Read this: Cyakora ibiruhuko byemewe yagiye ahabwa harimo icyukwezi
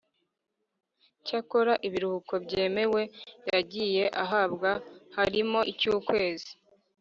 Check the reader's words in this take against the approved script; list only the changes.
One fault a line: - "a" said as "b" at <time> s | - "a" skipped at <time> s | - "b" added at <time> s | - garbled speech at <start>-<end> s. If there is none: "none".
none